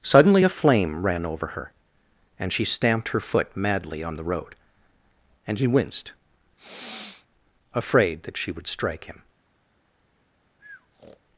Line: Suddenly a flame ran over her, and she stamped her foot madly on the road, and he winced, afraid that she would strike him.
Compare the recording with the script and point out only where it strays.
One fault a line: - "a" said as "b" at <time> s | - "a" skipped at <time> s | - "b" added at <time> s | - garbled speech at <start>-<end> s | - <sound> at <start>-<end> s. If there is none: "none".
- sniff at 6.6-7.3 s
- breath at 10.6-11.2 s